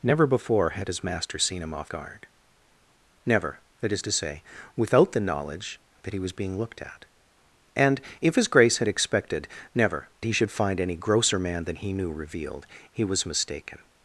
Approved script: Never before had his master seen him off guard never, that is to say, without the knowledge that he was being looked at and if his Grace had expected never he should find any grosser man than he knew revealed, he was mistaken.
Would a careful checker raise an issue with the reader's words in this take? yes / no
no